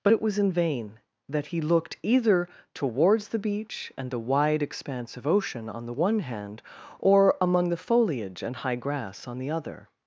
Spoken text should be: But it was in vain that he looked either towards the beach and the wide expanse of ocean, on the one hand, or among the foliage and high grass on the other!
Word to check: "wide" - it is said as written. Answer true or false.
true